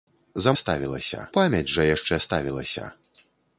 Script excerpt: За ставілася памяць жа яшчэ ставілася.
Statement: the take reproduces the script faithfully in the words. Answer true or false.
true